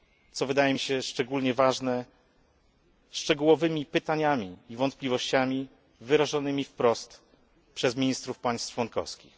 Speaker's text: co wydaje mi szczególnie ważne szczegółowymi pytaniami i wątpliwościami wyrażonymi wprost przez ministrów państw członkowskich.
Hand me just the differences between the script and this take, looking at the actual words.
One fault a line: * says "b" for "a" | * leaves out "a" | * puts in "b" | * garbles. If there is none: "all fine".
* puts in "się"